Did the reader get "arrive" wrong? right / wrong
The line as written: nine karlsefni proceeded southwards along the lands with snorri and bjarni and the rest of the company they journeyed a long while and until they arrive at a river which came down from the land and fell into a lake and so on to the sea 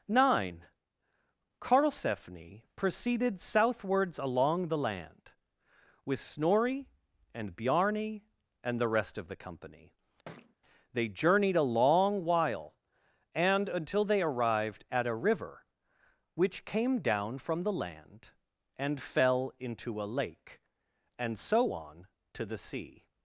wrong